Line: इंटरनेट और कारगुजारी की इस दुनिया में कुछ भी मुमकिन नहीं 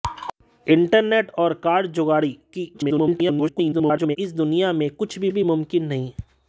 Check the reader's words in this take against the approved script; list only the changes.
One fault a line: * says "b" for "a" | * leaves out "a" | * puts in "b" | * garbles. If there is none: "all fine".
* garbles
* puts in "भी"